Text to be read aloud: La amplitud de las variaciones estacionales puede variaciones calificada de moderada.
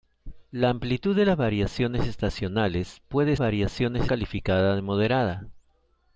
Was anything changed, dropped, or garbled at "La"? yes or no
no